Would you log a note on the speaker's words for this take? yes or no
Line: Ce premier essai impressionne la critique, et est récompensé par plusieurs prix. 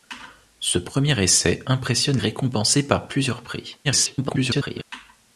yes